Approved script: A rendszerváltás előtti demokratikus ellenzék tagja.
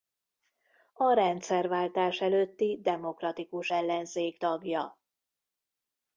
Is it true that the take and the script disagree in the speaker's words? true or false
false